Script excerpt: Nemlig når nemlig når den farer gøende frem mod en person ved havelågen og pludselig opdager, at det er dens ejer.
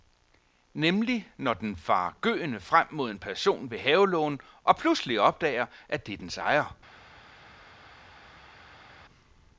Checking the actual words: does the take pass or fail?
fail